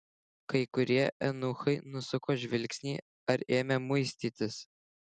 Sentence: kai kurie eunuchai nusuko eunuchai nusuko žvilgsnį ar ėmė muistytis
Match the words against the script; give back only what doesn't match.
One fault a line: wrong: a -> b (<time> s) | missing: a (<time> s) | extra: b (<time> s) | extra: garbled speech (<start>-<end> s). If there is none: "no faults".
missing: eunuchai nusuko (2.4 s)